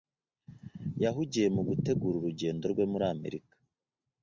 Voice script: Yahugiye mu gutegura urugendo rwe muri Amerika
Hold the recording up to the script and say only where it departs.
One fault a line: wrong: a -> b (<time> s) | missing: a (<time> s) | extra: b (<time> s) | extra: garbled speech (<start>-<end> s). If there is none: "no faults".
no faults